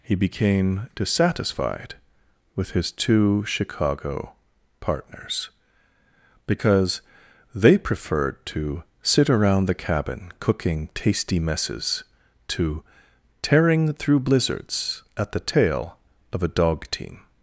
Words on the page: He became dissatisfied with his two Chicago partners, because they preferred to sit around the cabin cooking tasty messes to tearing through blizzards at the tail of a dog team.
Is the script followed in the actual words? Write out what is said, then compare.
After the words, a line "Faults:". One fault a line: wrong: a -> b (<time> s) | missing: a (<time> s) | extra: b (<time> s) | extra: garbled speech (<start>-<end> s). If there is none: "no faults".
He became dissatisfied with his two Chicago partners, because they preferred to sit around the cabin cooking tasty messes to tearing through blizzards at the tail of a dog team.
Faults:
no faults